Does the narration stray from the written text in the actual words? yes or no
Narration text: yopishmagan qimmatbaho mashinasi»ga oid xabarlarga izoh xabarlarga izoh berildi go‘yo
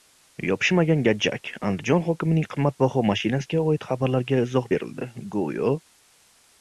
yes